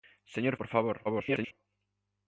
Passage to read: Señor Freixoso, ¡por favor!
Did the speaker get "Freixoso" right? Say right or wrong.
wrong